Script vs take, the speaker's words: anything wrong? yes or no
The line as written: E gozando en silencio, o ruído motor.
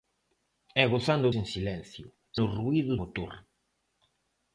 no